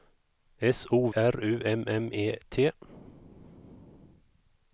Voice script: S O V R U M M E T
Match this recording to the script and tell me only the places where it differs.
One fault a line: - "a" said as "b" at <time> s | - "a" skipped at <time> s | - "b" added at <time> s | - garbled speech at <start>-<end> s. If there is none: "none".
- "V" skipped at 1.1 s